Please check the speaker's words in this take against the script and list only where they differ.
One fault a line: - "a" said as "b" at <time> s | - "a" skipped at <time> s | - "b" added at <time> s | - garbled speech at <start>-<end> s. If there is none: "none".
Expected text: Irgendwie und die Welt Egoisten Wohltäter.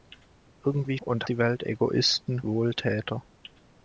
none